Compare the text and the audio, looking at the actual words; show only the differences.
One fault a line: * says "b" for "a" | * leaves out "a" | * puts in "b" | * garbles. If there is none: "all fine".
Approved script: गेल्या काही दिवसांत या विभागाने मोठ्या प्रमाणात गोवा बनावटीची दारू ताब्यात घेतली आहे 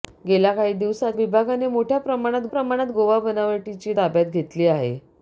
* leaves out "या"
* puts in "प्रमाणात"
* leaves out "दारू"